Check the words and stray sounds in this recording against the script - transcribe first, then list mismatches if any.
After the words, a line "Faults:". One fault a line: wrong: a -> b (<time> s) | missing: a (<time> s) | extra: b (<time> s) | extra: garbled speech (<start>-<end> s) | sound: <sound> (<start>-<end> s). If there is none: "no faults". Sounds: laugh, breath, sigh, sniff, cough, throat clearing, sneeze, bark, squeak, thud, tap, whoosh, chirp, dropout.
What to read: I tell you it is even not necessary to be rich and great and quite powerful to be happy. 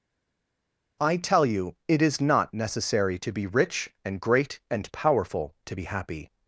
I tell you it is not necessary to be rich and great and powerful to be happy.
Faults:
missing: even (2.2 s)
missing: quite (4.9 s)